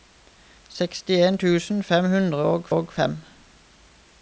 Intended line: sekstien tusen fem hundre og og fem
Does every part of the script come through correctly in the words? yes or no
yes